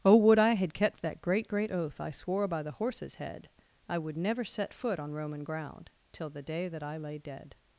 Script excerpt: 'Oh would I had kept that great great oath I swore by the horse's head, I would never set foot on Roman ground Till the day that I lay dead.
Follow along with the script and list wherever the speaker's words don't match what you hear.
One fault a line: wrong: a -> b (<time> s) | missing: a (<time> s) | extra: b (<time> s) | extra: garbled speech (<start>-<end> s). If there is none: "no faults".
no faults